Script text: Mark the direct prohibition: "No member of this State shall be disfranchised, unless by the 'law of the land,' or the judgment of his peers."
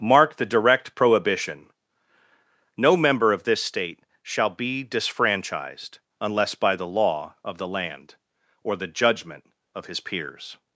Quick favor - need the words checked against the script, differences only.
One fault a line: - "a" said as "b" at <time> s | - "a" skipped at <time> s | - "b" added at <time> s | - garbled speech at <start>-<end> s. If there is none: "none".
none